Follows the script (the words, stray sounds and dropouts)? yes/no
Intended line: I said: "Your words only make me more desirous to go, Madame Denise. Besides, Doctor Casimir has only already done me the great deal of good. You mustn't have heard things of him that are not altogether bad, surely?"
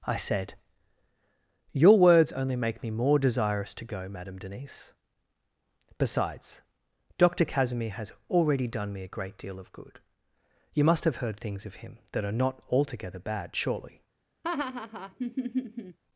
no